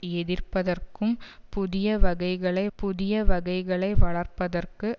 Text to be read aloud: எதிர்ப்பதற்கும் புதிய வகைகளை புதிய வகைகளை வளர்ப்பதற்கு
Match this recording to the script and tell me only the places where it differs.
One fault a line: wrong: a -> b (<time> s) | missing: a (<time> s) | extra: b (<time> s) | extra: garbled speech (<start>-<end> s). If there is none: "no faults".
no faults